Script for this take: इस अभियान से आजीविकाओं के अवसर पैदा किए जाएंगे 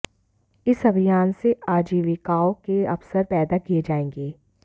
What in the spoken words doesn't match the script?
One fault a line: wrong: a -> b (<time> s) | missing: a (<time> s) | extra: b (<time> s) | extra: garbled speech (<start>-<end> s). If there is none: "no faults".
no faults